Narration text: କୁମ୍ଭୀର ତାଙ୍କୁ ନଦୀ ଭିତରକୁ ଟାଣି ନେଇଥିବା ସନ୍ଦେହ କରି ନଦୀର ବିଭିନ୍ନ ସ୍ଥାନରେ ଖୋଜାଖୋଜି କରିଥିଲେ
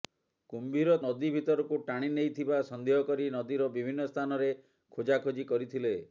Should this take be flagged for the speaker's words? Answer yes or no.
yes